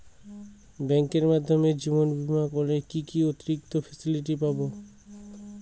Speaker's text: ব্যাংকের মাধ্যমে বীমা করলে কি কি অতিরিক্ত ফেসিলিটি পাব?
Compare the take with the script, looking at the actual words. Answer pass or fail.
fail